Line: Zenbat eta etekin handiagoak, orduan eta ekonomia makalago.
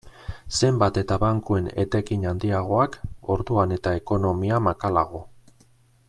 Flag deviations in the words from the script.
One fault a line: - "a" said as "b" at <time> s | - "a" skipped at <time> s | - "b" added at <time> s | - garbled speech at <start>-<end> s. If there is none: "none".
- "bankuen" added at 1.2 s